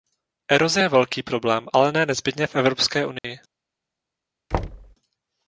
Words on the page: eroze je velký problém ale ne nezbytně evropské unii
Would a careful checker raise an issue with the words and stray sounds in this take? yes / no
yes